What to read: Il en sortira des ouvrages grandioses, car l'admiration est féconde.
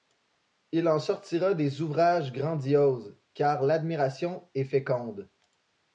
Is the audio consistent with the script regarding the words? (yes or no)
yes